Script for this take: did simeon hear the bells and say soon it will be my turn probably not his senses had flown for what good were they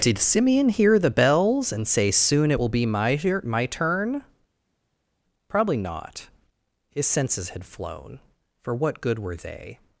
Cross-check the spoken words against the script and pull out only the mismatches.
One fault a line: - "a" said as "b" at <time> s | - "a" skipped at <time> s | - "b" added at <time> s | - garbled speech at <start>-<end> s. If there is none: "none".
- "my" added at 3.4 s